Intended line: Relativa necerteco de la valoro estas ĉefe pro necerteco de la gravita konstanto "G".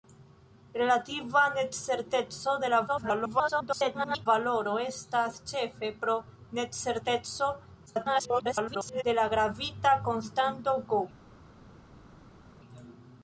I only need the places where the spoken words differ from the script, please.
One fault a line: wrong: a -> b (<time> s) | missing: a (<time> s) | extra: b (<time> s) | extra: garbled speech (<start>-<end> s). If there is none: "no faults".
extra: garbled speech (2.9-4.3 s)
extra: garbled speech (7.9-9.0 s)